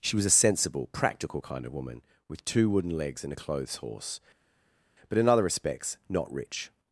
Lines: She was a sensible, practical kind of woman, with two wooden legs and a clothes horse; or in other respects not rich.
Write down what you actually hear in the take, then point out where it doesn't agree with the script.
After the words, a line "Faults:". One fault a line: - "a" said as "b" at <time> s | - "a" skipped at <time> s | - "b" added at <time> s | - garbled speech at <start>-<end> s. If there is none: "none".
She was a sensible, practical kind of woman, with two wooden legs and a clothes horse; but in other respects not rich.
Faults:
- "or" said as "but" at 5.1 s